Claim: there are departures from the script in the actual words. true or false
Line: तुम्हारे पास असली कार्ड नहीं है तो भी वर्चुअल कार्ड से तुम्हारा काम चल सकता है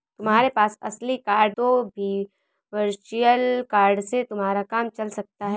true